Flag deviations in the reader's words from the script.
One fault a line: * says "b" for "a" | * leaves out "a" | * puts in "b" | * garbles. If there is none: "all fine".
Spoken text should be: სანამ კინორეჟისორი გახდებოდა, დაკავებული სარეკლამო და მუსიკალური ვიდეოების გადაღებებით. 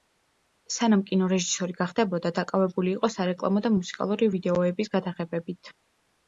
* puts in "იყო"